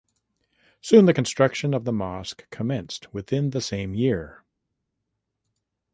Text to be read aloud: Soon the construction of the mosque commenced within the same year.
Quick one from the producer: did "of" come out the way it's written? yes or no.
yes